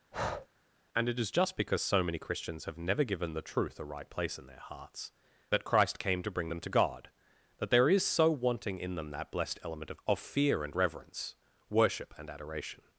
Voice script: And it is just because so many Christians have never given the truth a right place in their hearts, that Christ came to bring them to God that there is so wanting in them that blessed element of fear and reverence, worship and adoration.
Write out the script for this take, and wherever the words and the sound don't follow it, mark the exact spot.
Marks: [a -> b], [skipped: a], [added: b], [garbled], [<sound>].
[breath] And it is just because so many Christians have never given the truth a right place in their hearts, that Christ came to bring them to God that there is so wanting in them that blessed element of [added: of] fear and reverence, worship and adoration.